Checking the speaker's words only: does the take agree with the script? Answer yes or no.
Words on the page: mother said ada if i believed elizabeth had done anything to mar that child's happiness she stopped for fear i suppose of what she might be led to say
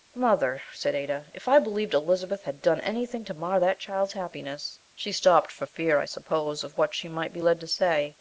yes